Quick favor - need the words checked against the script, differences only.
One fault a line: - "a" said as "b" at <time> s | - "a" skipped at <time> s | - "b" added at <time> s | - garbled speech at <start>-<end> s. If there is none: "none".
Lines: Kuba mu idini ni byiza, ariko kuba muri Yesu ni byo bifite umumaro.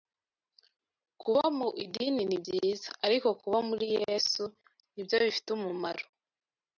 none